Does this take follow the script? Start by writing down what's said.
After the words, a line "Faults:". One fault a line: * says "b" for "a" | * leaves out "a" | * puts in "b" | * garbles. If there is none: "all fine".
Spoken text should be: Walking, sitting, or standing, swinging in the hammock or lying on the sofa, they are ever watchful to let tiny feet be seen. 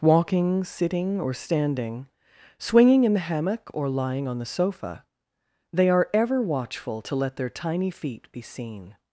Walking, sitting, or standing, swinging in the hammock or lying on the sofa, they are ever watchful to let their tiny feet be seen.
Faults:
* puts in "their"